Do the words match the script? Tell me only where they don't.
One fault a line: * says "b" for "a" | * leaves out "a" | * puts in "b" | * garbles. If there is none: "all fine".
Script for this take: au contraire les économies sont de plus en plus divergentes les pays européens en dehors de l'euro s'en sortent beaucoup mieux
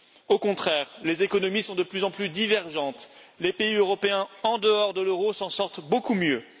all fine